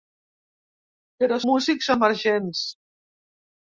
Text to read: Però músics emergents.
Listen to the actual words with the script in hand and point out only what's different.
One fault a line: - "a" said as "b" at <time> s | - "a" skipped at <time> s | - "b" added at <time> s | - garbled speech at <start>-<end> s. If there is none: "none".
none